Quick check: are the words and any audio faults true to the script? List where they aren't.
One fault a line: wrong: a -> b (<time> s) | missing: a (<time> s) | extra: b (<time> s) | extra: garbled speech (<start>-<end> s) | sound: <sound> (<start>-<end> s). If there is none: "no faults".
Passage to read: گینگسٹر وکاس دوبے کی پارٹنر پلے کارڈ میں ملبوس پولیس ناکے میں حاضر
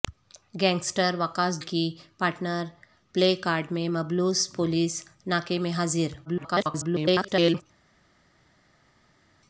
missing: دوبے (1.6 s)
extra: garbled speech (6.3-7.6 s)